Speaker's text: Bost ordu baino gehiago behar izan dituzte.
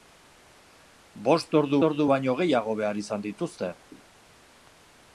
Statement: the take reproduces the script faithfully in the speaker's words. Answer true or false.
false